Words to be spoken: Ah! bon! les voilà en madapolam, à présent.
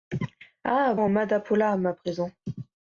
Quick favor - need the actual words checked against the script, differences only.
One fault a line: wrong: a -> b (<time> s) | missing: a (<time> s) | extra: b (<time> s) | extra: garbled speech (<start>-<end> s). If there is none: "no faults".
missing: bon les voilà (0.9 s)